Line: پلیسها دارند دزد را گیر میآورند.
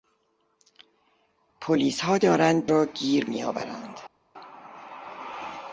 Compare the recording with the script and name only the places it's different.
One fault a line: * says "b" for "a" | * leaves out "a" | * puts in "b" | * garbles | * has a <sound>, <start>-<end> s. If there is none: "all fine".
* leaves out "دزد"